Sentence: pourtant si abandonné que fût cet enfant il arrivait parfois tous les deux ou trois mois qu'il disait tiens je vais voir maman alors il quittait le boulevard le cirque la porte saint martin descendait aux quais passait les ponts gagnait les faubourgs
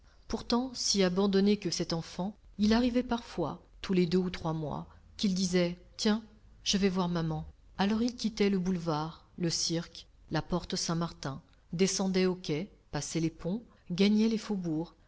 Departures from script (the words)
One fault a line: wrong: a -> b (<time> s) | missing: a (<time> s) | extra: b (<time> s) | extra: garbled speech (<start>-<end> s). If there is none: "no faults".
missing: fût (1.7 s)